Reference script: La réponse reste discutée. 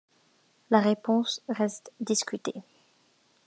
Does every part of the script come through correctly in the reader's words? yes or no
yes